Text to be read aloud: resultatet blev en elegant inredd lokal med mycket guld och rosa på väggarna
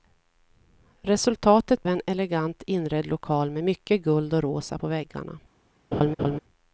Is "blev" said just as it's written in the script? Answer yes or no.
no